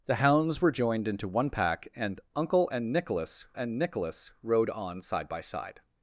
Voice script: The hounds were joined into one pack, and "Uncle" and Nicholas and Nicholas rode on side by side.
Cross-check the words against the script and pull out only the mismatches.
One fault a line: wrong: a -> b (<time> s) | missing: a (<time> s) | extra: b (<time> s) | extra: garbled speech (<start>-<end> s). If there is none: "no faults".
no faults